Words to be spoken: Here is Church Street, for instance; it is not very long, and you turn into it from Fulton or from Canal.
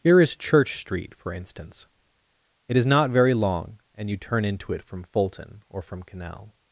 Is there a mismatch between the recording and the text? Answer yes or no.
no